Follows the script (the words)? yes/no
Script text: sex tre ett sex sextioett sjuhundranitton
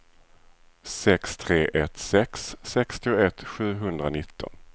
yes